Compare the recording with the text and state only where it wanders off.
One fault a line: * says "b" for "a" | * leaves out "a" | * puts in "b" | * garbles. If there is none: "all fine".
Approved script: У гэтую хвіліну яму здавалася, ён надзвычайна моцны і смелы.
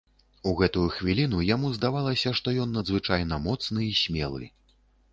* puts in "што"